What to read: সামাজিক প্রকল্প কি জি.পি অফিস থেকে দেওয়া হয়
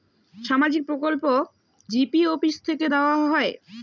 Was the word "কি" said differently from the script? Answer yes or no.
yes